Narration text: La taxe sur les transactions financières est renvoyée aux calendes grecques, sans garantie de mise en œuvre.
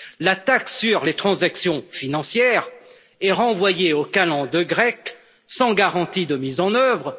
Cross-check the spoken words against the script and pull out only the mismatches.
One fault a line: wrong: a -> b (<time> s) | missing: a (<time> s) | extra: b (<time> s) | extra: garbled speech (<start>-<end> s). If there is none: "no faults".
no faults